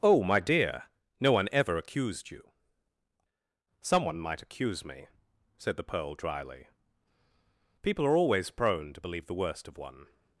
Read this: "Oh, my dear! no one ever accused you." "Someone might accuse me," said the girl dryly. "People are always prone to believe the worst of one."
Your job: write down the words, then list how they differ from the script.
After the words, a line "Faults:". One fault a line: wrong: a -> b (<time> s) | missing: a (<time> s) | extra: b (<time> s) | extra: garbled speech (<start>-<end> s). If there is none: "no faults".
"Oh, my dear! no one ever accused you." "Someone might accuse me," said the pearl dryly. "People are always prone to believe the worst of one."
Faults:
wrong: girl -> pearl (5.8 s)